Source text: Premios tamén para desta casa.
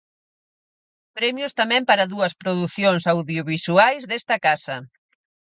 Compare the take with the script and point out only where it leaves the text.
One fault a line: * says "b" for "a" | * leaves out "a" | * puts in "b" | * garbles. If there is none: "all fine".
* puts in "dúas producións audiovisuais"